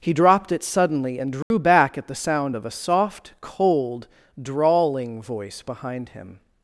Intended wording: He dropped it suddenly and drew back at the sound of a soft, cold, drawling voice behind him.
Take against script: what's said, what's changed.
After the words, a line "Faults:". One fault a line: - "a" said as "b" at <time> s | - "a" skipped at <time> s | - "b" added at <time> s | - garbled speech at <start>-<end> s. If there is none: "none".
He dropped it suddenly and drew back at the sound of a soft, cold, drawling voice behind him.
Faults:
none